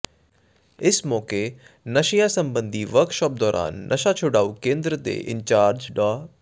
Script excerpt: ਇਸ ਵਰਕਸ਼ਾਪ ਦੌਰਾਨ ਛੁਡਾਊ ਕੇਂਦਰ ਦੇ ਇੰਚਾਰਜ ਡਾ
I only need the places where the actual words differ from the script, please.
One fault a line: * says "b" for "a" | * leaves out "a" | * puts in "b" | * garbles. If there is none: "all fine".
* puts in "ਮੌਕੇ ਨਸ਼ਿਆਂ ਸਬੰਧੀ"
* puts in "ਨਸ਼ਾ"